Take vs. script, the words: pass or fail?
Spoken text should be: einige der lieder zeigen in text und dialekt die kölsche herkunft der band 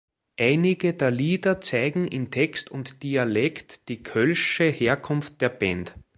pass